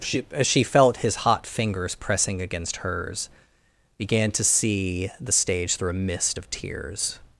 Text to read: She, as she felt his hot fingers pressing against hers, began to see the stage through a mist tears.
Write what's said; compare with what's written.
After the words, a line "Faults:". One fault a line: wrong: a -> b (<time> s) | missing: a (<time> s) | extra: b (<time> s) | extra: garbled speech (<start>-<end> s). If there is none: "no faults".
She, as she felt his hot fingers pressing against hers, began to see the stage through a mist of tears.
Faults:
extra: of (6.4 s)